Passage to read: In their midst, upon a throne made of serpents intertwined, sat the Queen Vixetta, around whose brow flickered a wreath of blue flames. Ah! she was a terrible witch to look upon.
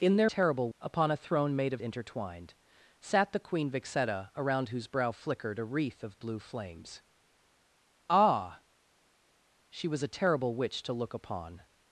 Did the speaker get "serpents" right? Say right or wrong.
wrong